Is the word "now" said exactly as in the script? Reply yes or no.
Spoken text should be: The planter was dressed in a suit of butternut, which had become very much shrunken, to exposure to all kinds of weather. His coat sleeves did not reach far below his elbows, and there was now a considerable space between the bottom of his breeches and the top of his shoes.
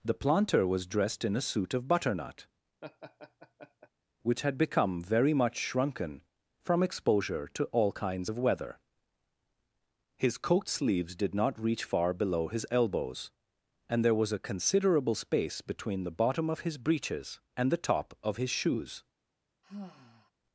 no